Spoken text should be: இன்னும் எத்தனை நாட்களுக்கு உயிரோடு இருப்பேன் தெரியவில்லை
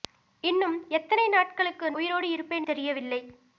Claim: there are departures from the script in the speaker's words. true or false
false